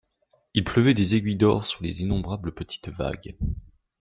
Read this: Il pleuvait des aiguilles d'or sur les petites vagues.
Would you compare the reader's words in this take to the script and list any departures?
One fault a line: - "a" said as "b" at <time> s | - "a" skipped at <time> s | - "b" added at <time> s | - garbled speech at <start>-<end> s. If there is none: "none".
- "innombrables" added at 2.0 s